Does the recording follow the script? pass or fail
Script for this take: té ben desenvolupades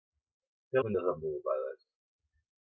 pass